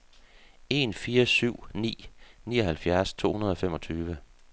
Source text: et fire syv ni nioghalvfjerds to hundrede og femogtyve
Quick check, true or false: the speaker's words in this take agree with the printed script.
false